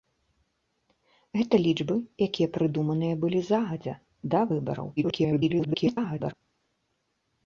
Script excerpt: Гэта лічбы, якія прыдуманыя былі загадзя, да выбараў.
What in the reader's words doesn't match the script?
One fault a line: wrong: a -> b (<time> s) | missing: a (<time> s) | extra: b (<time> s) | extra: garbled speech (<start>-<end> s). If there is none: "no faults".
extra: garbled speech (5.0-6.3 s)